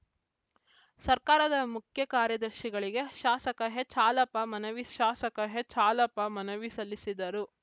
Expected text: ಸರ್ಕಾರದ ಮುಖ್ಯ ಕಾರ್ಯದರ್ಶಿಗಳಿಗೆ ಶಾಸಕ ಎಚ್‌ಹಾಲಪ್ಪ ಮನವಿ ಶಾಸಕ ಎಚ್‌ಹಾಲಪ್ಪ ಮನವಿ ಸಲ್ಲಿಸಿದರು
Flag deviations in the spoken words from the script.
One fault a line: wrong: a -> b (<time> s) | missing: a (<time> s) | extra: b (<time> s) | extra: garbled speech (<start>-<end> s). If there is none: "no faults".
no faults